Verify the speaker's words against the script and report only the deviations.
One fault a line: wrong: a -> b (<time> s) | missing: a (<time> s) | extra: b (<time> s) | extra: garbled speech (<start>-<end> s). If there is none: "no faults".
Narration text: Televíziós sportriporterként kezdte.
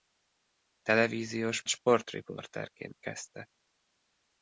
no faults